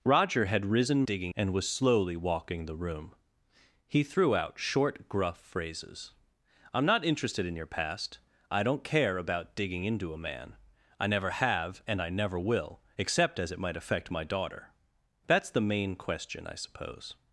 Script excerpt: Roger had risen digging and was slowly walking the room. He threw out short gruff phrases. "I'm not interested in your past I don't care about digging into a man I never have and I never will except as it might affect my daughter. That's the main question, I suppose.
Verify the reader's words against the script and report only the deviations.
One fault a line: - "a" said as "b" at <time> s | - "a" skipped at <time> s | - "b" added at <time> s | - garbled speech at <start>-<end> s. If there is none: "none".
none